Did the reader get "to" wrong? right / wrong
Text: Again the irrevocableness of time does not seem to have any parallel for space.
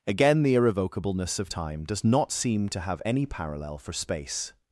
right